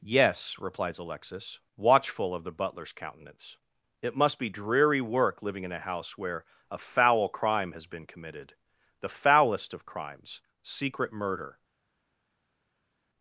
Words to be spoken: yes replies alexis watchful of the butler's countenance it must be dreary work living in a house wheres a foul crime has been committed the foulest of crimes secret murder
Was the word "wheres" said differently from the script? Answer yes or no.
yes